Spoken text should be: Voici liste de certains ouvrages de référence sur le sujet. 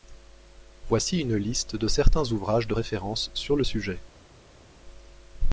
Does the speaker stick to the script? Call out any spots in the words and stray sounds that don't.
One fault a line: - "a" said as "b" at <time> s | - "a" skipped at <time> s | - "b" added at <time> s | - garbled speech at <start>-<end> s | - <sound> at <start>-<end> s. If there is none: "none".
- "une" added at 1.2 s